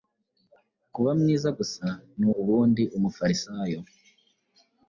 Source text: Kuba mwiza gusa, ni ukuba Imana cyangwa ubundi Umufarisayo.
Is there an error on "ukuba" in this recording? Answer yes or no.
yes